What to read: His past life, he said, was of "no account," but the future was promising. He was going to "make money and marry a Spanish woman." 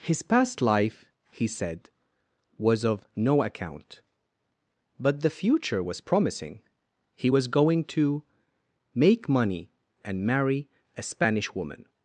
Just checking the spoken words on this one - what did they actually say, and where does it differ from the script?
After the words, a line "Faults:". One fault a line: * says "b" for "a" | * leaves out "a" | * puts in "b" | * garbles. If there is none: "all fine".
His past life, he said, was of "no account," but the future was promising. He was going to "make money and marry a Spanish woman."
Faults:
all fine